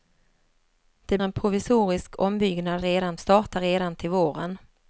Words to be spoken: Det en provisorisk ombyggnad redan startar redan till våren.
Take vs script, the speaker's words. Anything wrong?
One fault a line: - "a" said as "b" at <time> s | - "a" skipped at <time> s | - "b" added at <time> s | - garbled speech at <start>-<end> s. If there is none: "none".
none